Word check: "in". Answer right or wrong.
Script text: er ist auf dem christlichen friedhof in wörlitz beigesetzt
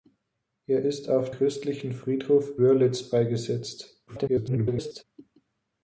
wrong